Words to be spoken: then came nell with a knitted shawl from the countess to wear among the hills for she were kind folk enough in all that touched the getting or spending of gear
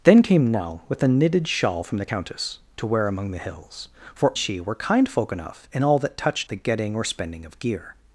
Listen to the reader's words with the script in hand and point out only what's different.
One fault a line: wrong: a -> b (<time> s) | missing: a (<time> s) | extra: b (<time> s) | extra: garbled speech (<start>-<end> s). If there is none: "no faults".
no faults